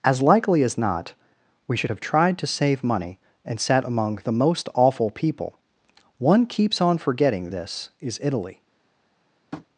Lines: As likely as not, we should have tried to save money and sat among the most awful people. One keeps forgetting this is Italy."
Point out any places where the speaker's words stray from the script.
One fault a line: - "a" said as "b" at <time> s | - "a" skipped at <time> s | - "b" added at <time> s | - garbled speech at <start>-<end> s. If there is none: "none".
- "on" added at 6.8 s